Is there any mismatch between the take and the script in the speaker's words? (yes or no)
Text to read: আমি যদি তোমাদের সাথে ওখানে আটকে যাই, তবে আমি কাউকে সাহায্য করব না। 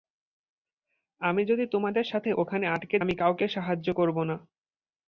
yes